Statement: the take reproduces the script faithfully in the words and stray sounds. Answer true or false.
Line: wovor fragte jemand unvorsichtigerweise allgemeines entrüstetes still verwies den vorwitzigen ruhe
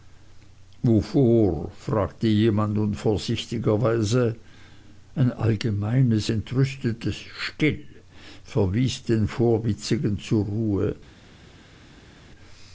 false